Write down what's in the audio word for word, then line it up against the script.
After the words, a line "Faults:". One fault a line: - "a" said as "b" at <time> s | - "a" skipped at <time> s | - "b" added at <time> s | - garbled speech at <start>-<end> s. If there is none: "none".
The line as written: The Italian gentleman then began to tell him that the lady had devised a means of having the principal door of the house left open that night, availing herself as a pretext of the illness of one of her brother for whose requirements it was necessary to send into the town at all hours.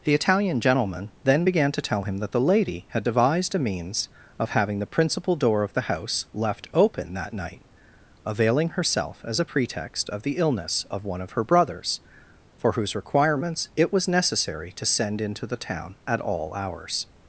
The Italian gentleman then began to tell him that the lady had devised a means of having the principal door of the house left open that night, availing herself as a pretext of the illness of one of her brothers for whose requirements it was necessary to send into the town at all hours.
Faults:
- "brother" said as "brothers" at 11.4 s